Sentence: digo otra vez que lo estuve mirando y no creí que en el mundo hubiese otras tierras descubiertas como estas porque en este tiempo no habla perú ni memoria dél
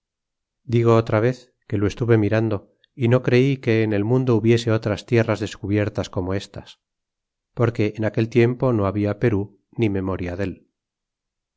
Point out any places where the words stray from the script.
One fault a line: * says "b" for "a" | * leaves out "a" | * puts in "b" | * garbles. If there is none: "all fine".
* says "aquel" for "este"